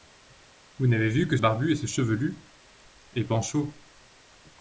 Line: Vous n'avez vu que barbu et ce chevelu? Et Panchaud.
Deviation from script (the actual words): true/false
false